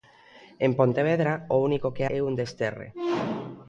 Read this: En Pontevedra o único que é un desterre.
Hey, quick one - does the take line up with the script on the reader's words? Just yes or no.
yes